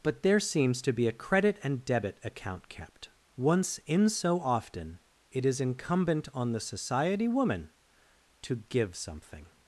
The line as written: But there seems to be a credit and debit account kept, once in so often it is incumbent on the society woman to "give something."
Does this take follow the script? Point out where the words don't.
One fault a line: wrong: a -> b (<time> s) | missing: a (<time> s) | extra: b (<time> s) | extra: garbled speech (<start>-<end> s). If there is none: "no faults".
no faults